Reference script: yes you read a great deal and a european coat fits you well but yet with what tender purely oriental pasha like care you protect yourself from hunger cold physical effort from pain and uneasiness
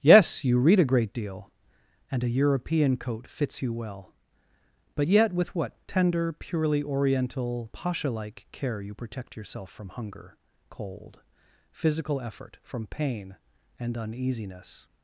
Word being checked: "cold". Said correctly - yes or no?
yes